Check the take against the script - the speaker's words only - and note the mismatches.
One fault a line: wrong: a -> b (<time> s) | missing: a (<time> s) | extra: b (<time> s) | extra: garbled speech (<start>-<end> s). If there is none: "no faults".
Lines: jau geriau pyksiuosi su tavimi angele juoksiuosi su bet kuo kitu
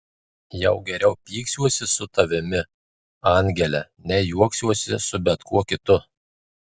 extra: nei (4.1 s)